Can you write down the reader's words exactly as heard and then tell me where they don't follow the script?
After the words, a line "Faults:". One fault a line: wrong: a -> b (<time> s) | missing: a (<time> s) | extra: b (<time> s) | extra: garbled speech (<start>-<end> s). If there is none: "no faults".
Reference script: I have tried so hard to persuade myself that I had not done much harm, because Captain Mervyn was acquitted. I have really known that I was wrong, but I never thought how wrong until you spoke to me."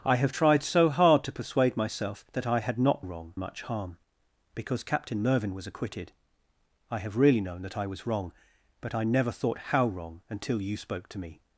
I have tried so hard to persuade myself that I had not wrong much harm, because Captain Mervyn was acquitted. I have really known that I was wrong, but I never thought how wrong until you spoke to me."
Faults:
wrong: done -> wrong (3.0 s)